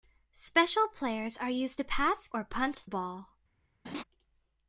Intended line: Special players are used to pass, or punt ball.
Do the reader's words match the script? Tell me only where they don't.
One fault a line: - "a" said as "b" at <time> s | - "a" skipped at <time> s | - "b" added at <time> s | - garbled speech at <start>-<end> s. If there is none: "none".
none